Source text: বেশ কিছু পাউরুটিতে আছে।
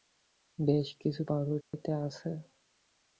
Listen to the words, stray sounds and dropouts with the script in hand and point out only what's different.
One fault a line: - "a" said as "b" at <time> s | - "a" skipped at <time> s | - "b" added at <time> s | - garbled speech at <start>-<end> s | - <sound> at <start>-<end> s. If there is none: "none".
- dropout at 1.6-1.7 s